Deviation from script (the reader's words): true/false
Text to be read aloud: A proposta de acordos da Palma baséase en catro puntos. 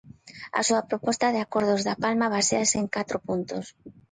true